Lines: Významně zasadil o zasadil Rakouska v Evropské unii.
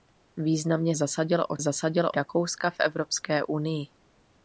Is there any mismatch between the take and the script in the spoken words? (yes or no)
no